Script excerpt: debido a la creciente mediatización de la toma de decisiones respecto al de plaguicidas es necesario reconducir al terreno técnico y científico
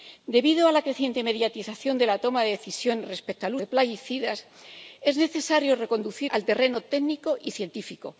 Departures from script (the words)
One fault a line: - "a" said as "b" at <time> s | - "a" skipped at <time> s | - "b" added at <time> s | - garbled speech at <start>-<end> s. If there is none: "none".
none